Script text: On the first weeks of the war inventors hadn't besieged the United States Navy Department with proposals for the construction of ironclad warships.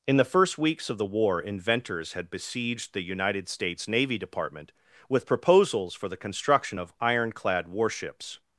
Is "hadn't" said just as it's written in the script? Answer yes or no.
no